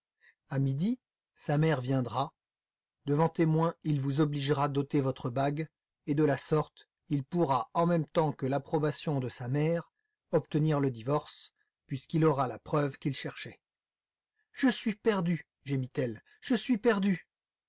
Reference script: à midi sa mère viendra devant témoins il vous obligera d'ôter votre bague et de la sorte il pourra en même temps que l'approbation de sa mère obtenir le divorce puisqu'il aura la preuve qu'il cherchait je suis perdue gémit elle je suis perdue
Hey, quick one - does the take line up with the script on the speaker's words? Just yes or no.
yes